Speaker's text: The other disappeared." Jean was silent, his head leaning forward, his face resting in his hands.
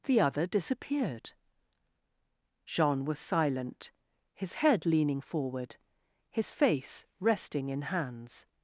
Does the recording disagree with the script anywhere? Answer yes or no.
yes